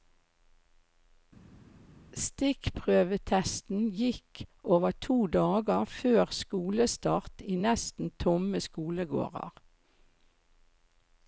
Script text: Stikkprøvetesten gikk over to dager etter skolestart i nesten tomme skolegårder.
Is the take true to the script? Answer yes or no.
no